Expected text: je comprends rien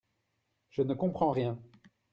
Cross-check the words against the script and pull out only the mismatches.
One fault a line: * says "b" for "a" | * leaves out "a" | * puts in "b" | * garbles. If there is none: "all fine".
* puts in "ne"